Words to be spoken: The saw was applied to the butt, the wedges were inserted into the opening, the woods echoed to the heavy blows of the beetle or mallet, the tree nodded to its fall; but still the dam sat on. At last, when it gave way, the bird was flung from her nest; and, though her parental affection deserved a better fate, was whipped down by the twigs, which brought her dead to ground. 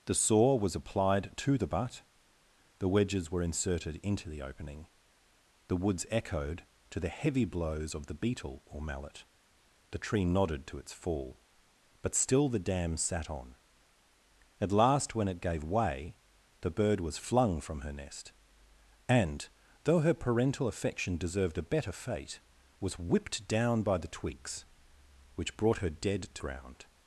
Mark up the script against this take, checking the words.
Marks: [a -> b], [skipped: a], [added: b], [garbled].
The saw was applied to the butt, the wedges were inserted into the opening, the woods echoed to the heavy blows of the beetle or mallet, the tree nodded to its fall; but still the dam sat on. At last, when it gave way, the bird was flung from her nest; and, though her parental affection deserved a better fate, was whipped down by the twigs, which brought her dead to ground.